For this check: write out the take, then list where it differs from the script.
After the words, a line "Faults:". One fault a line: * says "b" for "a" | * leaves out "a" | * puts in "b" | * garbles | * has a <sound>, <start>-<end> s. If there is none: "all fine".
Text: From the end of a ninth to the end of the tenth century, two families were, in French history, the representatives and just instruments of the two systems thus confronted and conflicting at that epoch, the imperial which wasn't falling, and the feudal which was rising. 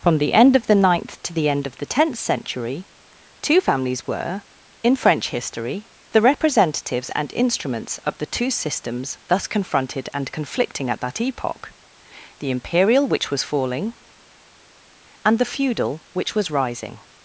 From the end of the ninth to the end of the tenth century, two families were, in French history, the representatives and instruments of the two systems thus confronted and conflicting at that epoch, the imperial which was falling, and the feudal which was rising.
Faults:
* says "the" for "a"
* leaves out "just"
* says "was" for "wasn't"